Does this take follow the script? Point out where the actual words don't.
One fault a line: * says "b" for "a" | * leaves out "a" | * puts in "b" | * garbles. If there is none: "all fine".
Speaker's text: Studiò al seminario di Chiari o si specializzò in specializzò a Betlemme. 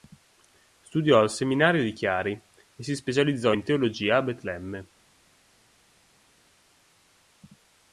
* says "e" for "o"
* says "teologia" for "specializzò"